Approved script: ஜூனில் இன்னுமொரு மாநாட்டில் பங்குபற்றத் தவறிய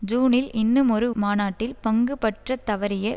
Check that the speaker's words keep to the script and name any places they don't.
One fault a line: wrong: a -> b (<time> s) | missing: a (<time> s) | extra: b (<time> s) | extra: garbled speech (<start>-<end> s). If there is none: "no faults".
no faults